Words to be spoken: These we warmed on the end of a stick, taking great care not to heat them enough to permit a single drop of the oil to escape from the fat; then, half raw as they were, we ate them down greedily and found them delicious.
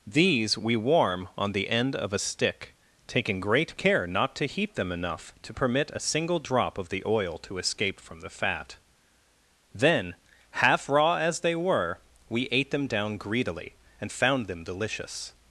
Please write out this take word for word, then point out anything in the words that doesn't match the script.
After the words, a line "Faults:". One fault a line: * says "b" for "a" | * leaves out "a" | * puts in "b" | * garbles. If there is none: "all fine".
These we warm on the end of a stick, taking great care not to heat them enough to permit a single drop of the oil to escape from the fat; then, half raw as they were, we ate them down greedily and found them delicious.
Faults:
* says "warm" for "warmed"